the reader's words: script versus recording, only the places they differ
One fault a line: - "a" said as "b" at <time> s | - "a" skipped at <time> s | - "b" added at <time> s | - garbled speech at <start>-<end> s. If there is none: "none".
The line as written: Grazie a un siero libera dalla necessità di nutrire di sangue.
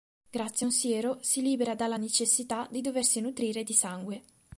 - "si" added at 1.2 s
- "doversi" added at 2.8 s